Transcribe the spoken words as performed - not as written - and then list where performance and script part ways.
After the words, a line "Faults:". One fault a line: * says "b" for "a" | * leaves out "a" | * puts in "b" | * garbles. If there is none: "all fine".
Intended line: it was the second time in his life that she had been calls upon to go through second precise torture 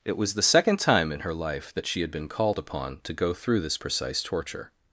it was the second time in her life that she had been called upon to go through this precise torture
Faults:
* says "her" for "his"
* says "called" for "calls"
* says "this" for "second"